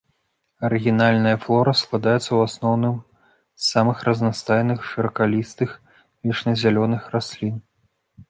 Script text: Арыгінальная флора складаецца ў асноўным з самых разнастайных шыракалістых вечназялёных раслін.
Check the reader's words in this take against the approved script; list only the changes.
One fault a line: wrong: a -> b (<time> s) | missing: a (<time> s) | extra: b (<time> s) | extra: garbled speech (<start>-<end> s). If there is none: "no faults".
no faults